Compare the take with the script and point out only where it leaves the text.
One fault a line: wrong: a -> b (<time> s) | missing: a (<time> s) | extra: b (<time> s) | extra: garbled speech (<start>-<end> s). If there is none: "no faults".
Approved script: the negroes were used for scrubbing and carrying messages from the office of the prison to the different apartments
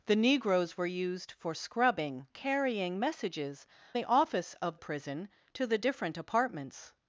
missing: and (2.3 s)
missing: from (3.7 s)
missing: the (4.8 s)